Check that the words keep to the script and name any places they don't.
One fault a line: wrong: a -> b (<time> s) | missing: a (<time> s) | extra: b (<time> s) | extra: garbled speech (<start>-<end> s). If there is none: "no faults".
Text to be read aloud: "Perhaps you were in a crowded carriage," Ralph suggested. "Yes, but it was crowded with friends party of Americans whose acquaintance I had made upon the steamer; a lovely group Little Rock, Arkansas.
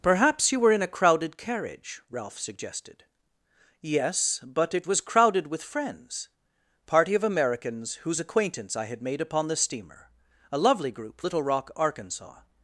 no faults